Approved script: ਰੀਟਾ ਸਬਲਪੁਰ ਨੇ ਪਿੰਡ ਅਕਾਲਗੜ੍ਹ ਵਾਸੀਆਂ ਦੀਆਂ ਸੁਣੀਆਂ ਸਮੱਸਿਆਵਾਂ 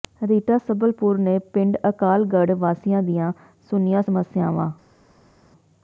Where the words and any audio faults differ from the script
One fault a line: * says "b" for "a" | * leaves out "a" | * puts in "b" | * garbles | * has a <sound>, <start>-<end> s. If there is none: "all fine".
all fine